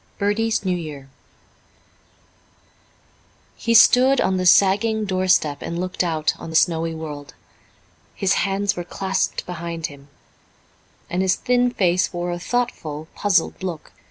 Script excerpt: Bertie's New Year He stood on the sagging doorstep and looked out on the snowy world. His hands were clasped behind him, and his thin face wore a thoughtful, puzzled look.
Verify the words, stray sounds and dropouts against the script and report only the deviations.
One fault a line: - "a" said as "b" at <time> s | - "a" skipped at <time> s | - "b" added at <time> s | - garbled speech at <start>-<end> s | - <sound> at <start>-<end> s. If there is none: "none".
none